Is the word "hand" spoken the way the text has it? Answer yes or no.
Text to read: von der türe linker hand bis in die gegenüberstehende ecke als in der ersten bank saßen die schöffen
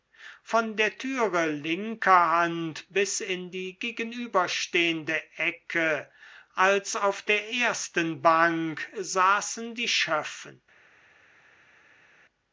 yes